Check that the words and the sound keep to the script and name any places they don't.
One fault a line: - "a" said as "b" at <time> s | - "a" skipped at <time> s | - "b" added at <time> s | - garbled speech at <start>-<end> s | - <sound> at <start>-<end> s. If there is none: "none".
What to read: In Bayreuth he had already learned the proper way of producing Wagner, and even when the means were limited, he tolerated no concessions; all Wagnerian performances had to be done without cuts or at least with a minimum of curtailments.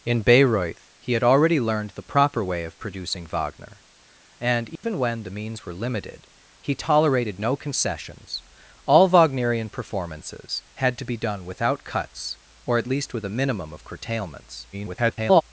- dropout at 4.8-4.8 s
- garbled speech at 14.7-15.4 s